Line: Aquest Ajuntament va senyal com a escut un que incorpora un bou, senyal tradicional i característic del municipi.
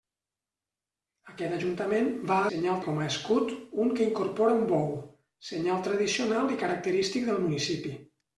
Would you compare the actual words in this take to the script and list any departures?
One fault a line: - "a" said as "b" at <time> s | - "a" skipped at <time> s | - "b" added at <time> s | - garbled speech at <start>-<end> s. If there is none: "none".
none